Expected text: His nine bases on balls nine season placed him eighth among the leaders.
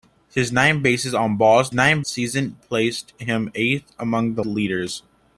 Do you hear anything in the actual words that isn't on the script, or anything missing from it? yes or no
no